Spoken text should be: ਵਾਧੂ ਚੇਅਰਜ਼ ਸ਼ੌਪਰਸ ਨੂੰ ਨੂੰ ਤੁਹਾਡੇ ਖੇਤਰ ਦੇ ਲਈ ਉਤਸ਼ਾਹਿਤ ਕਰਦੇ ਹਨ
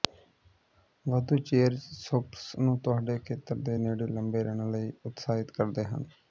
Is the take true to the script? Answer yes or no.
no